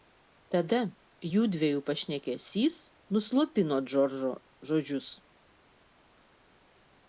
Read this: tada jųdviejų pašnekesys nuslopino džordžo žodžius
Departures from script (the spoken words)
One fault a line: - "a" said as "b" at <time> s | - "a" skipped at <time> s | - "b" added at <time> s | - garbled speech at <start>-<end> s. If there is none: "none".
none